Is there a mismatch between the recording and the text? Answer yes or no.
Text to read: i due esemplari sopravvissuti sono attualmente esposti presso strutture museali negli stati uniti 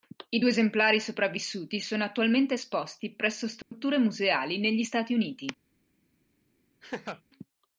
no